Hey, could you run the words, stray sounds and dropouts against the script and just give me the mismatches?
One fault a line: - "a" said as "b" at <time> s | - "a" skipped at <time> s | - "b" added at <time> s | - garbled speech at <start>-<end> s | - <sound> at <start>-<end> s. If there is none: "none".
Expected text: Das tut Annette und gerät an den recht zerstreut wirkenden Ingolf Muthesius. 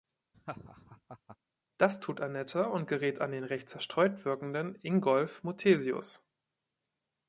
- laugh at 0.3-1.4 s